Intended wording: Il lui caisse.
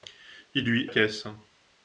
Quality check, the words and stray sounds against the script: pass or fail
pass